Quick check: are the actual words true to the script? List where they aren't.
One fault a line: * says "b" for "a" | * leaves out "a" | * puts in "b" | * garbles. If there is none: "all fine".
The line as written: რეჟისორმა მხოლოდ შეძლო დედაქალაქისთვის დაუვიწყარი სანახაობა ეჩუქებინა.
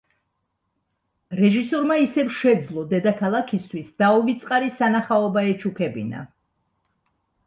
* says "ისევ" for "მხოლოდ"